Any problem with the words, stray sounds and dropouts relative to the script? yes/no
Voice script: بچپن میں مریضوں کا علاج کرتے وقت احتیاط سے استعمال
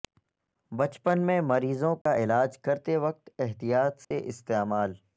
yes